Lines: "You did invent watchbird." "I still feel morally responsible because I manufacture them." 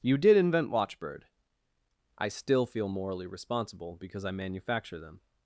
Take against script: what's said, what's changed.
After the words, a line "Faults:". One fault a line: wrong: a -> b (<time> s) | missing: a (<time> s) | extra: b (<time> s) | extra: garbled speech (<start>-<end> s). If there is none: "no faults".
"You did invent watchbird." "I still feel morally responsible because I manufacture them."
Faults:
no faults